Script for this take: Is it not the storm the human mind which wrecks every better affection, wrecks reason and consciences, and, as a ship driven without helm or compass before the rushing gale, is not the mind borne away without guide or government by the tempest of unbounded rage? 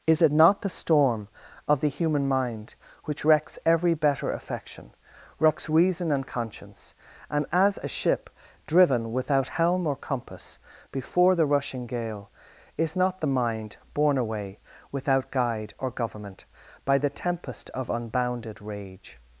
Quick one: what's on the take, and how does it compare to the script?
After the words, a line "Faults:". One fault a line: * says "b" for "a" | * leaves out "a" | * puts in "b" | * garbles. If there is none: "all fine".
Is it not the storm of the human mind which wrecks every better affection, wrecks reason and conscience, and, as a ship driven without helm or compass before the rushing gale, is not the mind borne away without guide or government by the tempest of unbounded rage?
Faults:
* puts in "of"
* says "conscience" for "consciences"